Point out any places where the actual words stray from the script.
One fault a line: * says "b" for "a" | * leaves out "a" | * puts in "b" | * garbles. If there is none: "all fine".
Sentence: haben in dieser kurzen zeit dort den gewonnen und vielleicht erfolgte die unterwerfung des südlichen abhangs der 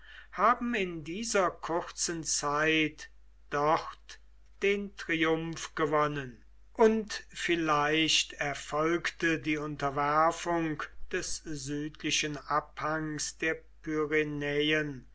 * puts in "triumph"